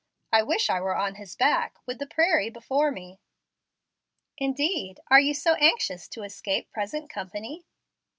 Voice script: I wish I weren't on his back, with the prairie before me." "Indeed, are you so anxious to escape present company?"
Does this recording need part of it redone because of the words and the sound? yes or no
yes